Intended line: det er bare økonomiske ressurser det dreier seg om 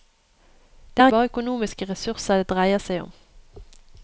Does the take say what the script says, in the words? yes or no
yes